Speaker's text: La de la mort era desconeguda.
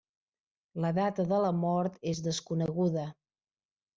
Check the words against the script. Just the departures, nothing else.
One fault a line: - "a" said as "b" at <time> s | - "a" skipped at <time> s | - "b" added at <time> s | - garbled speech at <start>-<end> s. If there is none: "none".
- "data" added at 1.0 s
- "era" said as "és" at 2.1 s